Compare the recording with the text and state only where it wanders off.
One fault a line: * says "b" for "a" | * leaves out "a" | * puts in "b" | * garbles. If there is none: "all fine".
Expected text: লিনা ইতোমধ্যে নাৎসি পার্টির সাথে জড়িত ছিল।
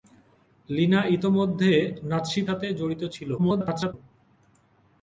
* leaves out "পার্টির"
* garbles